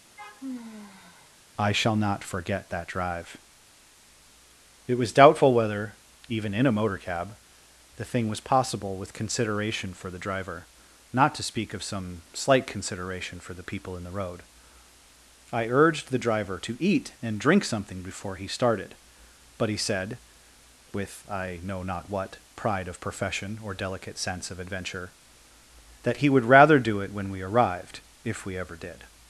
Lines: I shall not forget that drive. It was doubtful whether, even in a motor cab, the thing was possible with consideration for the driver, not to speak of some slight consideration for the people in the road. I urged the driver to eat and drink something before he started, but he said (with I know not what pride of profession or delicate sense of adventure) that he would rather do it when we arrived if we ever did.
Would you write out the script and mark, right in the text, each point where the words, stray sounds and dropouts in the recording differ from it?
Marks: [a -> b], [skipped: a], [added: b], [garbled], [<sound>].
[sigh] I shall not forget that drive. It was doubtful whether, even in a motor cab, the thing was possible with consideration for the driver, not to speak of some slight consideration for the people in the road. I urged the driver to eat and drink something before he started, but he said (with I know not what pride of profession or delicate sense of adventure) that he would rather do it when we arrived if we ever did.